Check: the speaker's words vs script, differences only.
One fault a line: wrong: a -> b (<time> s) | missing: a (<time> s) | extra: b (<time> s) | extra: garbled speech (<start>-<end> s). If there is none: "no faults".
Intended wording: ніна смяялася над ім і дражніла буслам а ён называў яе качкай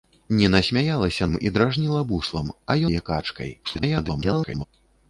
missing: над (1.3 s)
missing: ён называў (2.8 s)
extra: garbled speech (3.6-4.6 s)